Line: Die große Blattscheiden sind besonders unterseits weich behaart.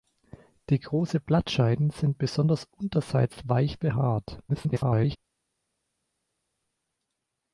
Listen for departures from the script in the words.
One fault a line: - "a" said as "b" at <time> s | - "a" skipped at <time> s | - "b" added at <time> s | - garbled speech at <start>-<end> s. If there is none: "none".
- garbled speech at 4.5-5.2 s